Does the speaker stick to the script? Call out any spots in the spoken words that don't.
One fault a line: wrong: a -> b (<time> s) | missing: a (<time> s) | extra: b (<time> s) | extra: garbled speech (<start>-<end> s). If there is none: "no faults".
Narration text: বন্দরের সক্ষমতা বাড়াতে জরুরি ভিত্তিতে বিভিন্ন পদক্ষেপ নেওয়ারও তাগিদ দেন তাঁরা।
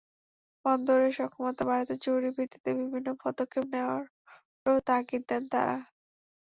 no faults